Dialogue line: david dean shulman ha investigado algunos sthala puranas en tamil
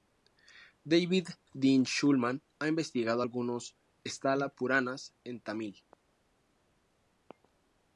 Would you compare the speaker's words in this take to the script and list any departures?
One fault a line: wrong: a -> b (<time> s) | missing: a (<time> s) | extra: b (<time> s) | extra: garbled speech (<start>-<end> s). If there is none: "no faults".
no faults